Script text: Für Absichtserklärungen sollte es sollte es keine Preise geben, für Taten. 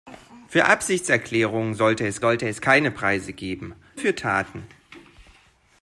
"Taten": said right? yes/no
yes